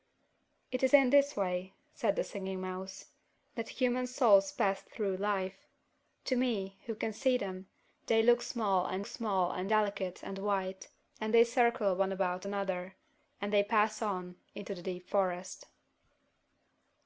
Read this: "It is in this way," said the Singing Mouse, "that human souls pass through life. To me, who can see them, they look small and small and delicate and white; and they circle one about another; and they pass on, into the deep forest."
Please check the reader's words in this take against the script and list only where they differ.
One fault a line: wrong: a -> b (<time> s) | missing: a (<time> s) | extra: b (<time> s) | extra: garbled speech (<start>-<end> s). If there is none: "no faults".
no faults